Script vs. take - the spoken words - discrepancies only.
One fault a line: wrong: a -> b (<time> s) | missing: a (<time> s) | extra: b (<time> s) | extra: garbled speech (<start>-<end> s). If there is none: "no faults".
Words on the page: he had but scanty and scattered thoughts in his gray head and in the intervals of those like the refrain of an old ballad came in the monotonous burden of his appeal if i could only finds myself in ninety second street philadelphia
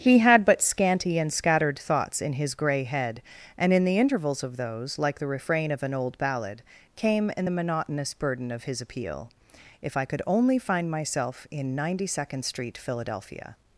wrong: finds -> find (10.6 s)